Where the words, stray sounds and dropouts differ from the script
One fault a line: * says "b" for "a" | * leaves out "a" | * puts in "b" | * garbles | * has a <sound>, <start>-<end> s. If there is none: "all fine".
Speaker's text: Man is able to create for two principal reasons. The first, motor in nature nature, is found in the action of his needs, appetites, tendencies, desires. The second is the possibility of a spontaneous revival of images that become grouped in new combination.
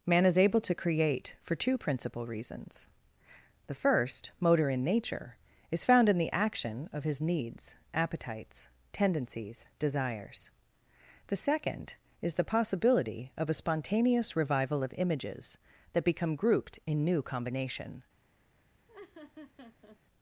* leaves out "nature"
* has a laugh, 18.9-20.0 s